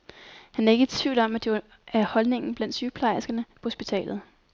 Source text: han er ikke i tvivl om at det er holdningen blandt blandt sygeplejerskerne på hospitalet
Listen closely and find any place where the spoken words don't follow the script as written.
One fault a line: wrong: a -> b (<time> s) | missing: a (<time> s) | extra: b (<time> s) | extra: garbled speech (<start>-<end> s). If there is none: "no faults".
missing: blandt (2.8 s)